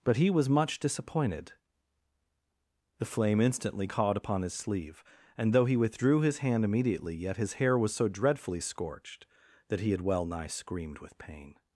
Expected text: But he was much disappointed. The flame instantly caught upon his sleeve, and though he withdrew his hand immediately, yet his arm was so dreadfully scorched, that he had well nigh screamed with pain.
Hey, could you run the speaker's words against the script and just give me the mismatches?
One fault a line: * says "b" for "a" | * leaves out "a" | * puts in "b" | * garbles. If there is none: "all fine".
* says "hair" for "arm"